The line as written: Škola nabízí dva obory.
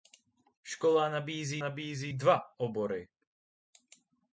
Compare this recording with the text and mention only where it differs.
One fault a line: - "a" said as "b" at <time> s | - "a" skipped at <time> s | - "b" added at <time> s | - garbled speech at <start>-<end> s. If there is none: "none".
- "nabízí" added at 1.6 s